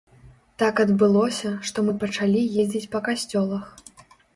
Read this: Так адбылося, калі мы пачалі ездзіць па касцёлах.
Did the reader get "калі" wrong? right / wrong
wrong